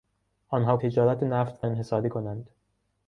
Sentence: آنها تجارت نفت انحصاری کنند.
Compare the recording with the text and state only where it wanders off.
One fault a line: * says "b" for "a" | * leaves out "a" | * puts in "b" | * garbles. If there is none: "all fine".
all fine